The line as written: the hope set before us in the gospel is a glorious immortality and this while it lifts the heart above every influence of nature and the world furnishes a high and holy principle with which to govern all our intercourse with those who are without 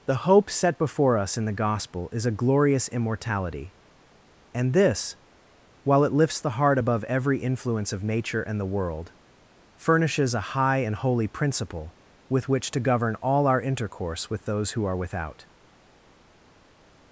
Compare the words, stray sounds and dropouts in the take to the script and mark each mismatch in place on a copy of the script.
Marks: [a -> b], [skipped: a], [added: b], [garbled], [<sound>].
the hope set before us in the gospel is a glorious immortality and this while it lifts the heart above every influence of nature and the world furnishes a high and holy principle with which to govern all our intercourse with those who are without